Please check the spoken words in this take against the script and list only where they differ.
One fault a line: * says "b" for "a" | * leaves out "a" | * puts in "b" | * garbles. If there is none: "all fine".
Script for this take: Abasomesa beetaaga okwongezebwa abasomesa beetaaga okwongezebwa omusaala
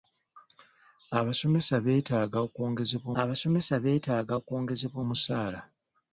all fine